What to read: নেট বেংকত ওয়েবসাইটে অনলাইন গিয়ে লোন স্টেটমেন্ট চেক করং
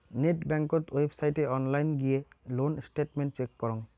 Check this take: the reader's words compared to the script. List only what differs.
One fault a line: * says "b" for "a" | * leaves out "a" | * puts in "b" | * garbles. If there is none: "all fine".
all fine